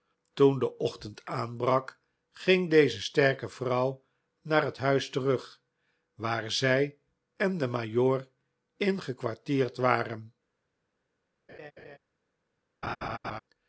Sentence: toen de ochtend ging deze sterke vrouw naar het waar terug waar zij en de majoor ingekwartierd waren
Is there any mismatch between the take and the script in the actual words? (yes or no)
yes